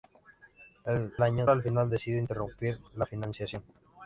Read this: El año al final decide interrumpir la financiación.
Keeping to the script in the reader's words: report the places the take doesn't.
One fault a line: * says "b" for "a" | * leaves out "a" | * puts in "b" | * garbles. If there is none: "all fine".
all fine